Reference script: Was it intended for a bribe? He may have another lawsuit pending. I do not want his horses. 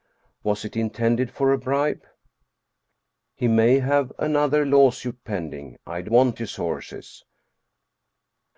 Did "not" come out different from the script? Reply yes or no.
yes